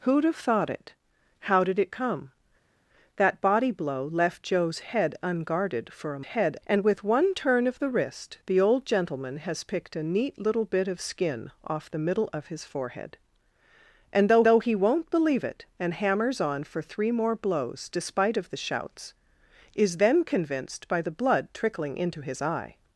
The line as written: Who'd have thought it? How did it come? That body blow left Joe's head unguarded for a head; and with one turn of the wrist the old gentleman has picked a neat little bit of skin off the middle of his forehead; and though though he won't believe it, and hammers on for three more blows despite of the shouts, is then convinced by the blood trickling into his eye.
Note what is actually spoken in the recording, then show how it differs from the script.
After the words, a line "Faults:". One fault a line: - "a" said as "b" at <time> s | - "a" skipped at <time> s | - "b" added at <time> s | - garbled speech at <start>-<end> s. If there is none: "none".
Who'd have thought it? How did it come? That body blow left Joe's head unguarded for a head; and with one turn of the wrist the old gentleman has picked a neat little bit of skin off the middle of his forehead; and though though he won't believe it, and hammers on for three more blows despite of the shouts, is then convinced by the blood trickling into his eye.
Faults:
none